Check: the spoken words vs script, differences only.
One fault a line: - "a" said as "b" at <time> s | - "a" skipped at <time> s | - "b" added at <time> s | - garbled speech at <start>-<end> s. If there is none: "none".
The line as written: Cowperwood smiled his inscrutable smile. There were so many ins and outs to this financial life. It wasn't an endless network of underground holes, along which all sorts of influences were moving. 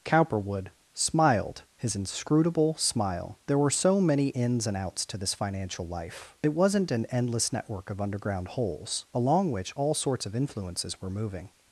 none